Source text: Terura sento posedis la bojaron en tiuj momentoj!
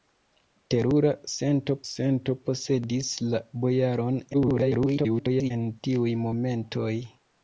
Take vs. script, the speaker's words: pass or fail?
fail